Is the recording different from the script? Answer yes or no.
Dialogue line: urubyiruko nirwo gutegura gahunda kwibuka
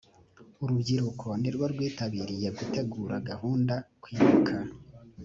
yes